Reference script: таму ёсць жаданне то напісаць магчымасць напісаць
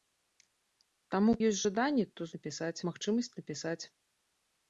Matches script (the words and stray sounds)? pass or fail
pass